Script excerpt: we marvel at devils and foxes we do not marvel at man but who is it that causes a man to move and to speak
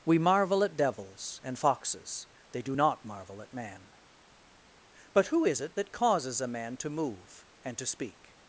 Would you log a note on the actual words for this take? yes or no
yes